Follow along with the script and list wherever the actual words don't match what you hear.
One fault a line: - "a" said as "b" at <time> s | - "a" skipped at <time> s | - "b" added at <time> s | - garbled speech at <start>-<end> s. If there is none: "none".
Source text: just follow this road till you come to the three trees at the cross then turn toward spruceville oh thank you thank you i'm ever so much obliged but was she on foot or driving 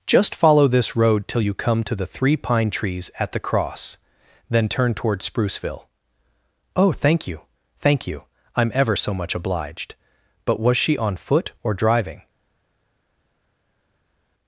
- "pine" added at 2.4 s